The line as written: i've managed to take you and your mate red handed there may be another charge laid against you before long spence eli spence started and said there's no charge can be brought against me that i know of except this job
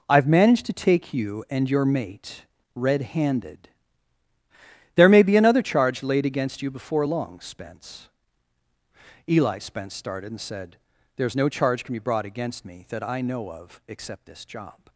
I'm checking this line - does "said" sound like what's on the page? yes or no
yes